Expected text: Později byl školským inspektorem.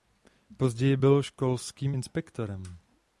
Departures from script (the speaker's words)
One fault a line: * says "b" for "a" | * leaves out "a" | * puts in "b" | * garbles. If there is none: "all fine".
all fine